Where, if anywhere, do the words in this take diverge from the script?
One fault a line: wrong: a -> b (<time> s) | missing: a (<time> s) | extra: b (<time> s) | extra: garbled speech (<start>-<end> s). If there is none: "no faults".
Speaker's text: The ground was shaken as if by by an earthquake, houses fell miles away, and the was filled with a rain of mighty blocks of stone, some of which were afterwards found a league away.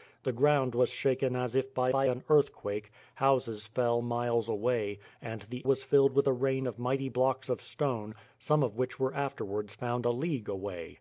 no faults